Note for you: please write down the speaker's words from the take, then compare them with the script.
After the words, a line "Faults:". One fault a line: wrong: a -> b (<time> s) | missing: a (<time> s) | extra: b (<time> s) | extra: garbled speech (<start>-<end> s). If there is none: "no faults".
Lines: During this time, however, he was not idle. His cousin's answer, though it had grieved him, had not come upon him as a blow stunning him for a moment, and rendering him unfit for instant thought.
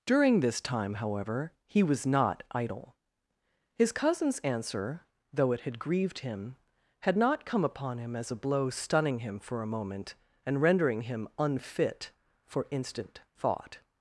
During this time, however, he was not idle. His cousin's answer, though it had grieved him, had not come upon him as a blow stunning him for a moment, and rendering him unfit for instant thought.
Faults:
no faults